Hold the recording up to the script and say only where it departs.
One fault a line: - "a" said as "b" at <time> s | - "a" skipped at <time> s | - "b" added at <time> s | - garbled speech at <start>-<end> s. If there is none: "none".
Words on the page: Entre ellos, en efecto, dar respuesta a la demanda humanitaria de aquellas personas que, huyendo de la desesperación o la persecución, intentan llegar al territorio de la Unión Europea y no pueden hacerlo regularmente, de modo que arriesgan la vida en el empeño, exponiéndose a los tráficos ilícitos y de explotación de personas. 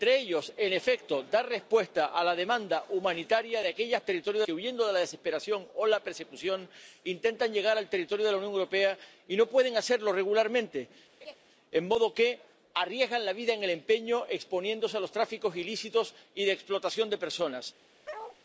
- "personas" said as "territorio" at 4.0 s